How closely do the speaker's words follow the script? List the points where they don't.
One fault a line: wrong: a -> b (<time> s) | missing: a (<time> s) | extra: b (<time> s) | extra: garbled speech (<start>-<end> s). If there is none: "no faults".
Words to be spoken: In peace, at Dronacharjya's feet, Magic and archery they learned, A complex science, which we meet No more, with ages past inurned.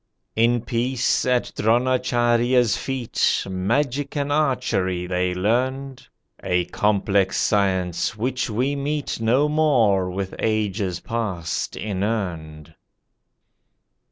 no faults